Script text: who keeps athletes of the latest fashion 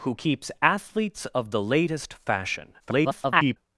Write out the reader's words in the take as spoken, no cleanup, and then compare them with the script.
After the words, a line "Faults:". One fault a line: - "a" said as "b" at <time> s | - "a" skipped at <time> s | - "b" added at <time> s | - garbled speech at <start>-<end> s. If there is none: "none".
who keeps athletes of the latest fashion [garbled]
Faults:
- garbled speech at 2.8-3.6 s